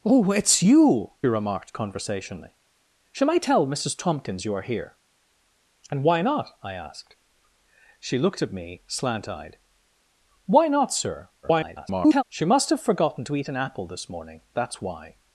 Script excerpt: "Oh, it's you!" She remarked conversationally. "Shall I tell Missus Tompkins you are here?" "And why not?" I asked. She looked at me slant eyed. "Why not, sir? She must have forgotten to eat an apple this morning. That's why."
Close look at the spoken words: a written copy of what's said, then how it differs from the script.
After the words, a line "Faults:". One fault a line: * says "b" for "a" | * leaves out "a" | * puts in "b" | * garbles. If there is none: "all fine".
"Oh, it's you!" Remarked conversationally. "Shall I tell Missus Tompkins you are here?" "And why not?" I asked. She looked at me slant eyed. "Why not, sir? [garbled] She must have forgotten to eat an apple this morning. That's why."
Faults:
* leaves out "She"
* garbles